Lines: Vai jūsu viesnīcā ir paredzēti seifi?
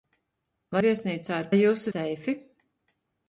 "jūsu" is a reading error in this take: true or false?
true